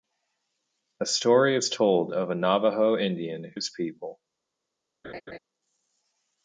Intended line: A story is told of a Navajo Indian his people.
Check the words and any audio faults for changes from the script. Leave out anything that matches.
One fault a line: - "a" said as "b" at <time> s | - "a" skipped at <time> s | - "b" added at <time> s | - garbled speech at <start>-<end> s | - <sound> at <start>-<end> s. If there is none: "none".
- laugh at 5.0-5.4 s